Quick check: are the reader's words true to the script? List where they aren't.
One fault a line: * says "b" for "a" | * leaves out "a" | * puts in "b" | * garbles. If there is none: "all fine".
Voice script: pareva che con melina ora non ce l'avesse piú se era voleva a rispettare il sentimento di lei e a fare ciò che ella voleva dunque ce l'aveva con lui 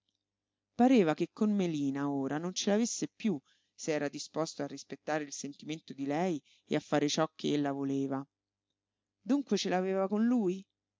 * says "disposto" for "voleva"